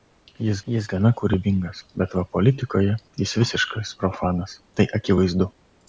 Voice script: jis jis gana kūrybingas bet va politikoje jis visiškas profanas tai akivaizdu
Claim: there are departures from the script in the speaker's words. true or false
false